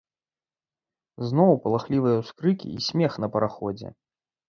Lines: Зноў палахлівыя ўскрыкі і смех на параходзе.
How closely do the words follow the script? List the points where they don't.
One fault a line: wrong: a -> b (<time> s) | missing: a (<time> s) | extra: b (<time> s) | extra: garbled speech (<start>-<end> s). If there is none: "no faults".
no faults